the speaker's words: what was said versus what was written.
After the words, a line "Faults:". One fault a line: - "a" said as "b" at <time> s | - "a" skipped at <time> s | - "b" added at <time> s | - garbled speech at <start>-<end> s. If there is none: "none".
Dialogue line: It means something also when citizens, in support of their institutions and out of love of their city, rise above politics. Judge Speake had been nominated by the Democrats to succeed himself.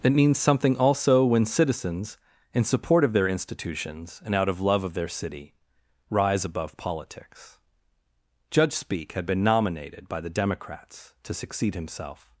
It means something also when citizens, in support of their institutions and out of love of their city, rise above politics. Judge Speake had been nominated by the Democrats to succeed himself.
Faults:
none